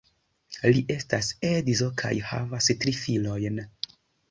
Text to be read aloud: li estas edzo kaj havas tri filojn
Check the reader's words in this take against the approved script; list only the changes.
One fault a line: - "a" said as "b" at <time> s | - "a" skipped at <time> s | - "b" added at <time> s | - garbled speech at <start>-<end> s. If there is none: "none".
none